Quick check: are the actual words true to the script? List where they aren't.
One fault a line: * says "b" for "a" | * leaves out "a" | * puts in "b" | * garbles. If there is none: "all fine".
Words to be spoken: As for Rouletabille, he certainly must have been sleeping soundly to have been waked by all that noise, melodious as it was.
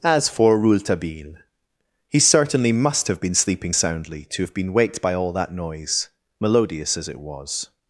all fine